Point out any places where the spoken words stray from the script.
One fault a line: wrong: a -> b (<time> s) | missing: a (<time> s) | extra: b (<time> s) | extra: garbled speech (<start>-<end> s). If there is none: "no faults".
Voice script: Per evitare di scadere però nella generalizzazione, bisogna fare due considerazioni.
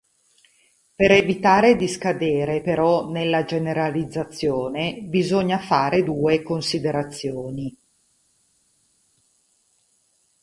no faults